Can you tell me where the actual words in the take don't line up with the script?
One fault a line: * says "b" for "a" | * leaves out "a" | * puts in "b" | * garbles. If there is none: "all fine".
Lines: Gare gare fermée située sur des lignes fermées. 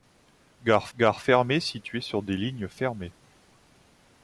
all fine